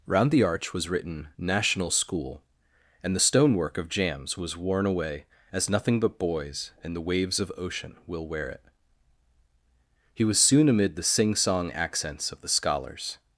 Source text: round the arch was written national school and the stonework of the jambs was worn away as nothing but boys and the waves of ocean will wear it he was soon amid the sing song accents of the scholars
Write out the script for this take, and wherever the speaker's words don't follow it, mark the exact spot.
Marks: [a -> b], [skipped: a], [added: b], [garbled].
round the arch was written national school and the stonework of [skipped: the] jambs was worn away as nothing but boys and the waves of ocean will wear it he was soon amid the sing song accents of the scholars